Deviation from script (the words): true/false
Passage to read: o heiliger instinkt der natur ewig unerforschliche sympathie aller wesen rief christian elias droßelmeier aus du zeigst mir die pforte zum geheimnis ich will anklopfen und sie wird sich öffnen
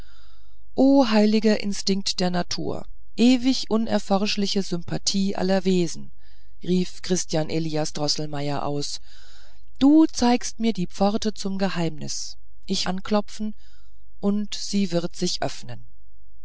true